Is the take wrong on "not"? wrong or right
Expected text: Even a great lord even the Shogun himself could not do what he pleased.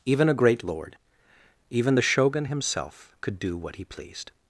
wrong